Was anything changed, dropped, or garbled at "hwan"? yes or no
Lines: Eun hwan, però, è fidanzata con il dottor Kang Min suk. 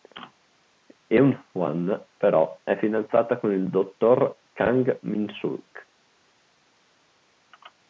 no